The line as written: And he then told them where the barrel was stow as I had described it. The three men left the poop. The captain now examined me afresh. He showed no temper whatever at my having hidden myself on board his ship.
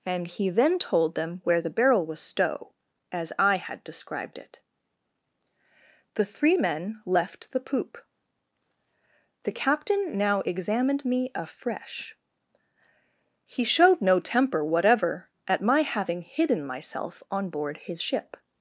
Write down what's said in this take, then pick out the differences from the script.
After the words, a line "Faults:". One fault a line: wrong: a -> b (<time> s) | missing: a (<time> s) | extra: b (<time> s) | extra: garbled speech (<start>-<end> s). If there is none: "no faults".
And he then told them where the barrel was stow as I had described it. The three men left the poop. The captain now examined me afresh. He showed no temper whatever at my having hidden myself on board his ship.
Faults:
no faults